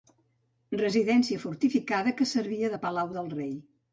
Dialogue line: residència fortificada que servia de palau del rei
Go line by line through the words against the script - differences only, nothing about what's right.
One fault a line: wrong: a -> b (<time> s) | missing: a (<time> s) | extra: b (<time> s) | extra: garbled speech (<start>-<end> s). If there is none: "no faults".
no faults